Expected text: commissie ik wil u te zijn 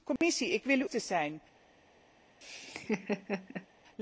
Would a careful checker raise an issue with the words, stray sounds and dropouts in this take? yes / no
yes